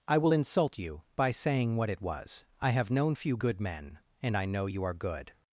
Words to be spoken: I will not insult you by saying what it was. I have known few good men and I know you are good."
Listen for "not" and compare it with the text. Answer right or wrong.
wrong